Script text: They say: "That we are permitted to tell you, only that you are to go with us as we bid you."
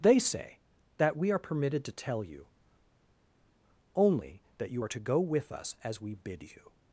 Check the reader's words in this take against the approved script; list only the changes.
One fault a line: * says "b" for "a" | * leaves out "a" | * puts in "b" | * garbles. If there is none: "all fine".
all fine